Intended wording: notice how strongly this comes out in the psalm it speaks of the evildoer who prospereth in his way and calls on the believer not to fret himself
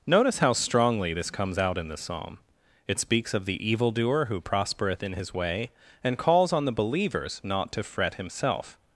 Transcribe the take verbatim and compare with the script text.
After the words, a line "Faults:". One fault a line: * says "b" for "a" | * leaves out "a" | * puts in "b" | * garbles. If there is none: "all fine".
notice how strongly this comes out in the psalm it speaks of the evildoer who prospereth in his way and calls on the believers not to fret himself
Faults:
* says "believers" for "believer"